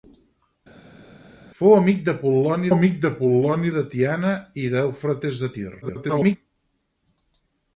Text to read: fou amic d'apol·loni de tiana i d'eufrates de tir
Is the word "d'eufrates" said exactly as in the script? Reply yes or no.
yes